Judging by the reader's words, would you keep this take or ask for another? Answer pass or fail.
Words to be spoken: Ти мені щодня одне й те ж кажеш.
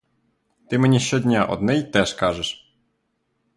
pass